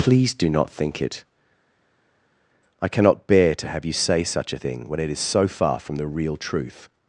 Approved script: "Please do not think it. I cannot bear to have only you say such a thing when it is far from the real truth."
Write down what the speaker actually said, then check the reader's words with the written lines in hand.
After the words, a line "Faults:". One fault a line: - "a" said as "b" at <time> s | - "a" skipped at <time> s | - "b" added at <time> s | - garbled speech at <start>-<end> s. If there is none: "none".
"Please do not think it. I cannot bear to have you say such a thing when it is so far from the real truth."
Faults:
- "only" skipped at 3.9 s
- "so" added at 5.2 s